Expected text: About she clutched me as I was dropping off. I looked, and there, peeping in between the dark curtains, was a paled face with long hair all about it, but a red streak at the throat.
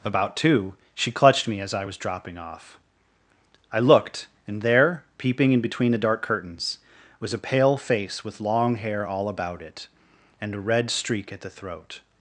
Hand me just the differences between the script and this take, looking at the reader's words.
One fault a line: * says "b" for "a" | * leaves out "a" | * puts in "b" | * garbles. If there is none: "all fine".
* puts in "two"
* says "pale" for "paled"
* says "and" for "but"